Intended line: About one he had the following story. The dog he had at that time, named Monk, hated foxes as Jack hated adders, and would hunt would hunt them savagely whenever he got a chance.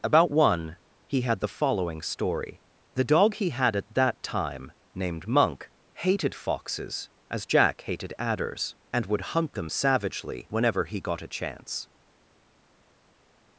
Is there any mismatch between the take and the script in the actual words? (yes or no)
yes